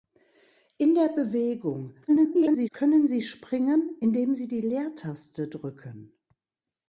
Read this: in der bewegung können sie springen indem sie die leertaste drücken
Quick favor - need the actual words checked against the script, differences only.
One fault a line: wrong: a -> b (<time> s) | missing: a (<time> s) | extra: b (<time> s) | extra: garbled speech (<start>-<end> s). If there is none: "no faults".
extra: garbled speech (2.1-2.7 s)